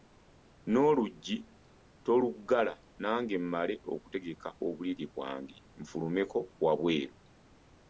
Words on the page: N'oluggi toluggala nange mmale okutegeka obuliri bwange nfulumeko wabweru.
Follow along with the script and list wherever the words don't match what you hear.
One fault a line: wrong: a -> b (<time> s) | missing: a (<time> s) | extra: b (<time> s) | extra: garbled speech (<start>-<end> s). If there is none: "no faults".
no faults